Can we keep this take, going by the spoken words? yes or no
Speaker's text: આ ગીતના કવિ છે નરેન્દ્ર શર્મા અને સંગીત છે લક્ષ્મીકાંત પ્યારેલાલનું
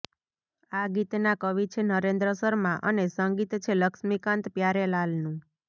yes